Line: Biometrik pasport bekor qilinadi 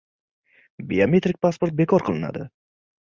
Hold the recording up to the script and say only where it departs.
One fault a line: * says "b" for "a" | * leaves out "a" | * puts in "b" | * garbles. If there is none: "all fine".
all fine